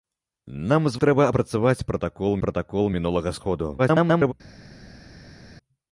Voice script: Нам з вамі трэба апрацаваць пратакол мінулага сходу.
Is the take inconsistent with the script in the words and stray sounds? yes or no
yes